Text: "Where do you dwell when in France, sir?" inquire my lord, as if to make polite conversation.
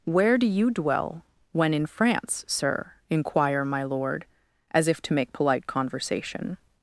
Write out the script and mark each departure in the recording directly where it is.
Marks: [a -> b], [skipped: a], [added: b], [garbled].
"Where do you dwell when in France, sir?" inquire my lord, as if to make polite conversation.